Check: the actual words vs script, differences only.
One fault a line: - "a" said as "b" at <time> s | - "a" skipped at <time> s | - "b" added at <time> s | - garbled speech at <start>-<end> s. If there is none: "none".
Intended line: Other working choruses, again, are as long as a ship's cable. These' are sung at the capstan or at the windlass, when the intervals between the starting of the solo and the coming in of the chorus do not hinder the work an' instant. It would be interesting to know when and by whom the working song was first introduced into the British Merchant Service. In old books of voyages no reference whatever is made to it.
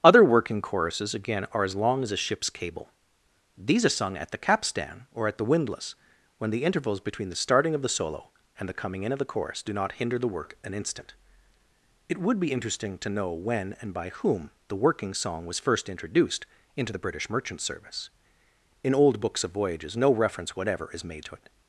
none